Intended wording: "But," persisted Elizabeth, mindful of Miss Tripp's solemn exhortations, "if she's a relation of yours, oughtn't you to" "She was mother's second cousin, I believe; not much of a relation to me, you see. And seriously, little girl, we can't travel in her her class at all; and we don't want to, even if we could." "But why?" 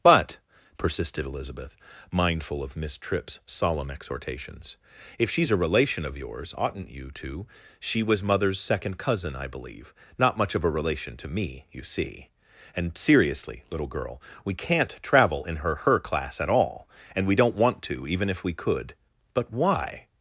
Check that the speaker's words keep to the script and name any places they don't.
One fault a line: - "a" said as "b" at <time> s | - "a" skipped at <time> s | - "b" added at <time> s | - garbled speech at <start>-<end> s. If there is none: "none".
none